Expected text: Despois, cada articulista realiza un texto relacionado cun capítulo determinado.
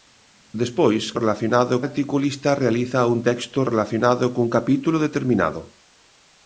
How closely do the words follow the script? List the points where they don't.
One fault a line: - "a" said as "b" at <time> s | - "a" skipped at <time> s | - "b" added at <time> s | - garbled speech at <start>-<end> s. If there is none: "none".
- "cada" said as "relacionado" at 1.2 s